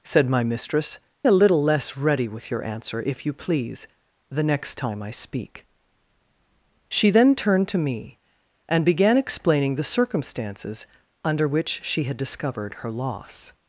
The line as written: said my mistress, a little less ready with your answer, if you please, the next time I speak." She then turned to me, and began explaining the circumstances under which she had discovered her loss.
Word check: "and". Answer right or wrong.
right